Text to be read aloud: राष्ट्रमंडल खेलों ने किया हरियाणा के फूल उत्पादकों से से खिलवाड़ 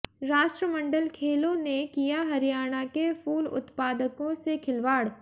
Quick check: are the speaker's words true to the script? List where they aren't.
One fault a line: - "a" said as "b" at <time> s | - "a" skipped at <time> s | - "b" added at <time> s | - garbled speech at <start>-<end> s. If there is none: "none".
- "से" skipped at 4.6 s